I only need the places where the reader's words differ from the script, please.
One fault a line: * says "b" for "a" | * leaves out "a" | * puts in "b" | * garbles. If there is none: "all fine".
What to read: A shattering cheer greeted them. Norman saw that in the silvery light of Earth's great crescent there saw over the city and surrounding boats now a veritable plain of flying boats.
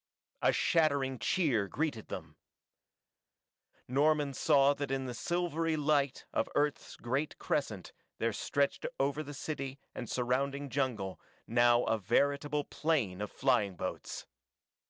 * says "stretched" for "saw"
* says "jungle" for "boats"